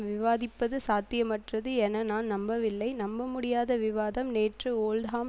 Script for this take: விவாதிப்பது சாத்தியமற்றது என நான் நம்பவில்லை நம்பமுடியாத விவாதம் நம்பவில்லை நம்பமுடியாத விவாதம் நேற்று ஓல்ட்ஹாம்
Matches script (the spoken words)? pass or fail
fail